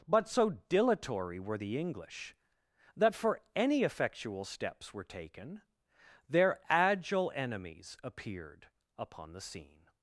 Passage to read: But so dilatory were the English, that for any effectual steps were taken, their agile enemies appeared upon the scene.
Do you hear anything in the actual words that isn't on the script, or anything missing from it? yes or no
no